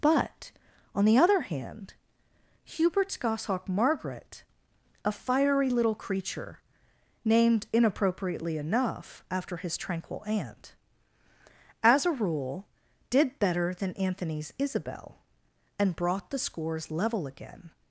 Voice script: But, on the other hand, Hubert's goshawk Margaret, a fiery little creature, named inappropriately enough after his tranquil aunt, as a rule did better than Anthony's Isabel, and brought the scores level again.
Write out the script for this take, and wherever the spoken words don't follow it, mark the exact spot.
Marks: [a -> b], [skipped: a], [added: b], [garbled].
But, on the other hand, Hubert's goshawk Margaret, a fiery little creature, named inappropriately enough after his tranquil aunt, as a rule did better than Anthony's Isabel, and brought the scores level again.